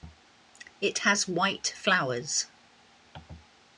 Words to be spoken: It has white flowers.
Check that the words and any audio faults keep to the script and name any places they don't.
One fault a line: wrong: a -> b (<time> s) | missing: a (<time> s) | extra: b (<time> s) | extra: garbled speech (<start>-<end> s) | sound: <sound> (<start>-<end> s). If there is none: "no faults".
no faults